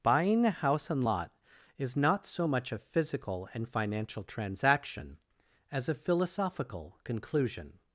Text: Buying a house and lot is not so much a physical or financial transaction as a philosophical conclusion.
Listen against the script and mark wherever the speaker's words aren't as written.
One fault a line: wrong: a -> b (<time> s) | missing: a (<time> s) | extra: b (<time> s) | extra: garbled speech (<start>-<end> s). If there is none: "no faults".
wrong: or -> and (3.5 s)